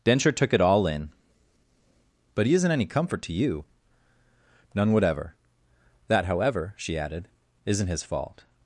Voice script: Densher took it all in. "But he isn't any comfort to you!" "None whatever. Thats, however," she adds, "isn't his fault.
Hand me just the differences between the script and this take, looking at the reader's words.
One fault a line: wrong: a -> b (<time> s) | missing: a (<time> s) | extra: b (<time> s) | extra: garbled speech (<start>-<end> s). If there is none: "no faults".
wrong: Thats -> That (6.1 s)
wrong: adds -> added (7.0 s)